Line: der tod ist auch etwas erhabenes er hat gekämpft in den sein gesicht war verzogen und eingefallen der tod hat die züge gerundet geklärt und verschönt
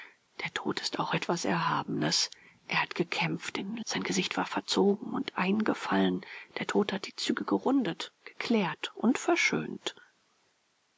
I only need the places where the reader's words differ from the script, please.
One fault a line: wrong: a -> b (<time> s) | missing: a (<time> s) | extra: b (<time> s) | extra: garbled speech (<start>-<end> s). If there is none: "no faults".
no faults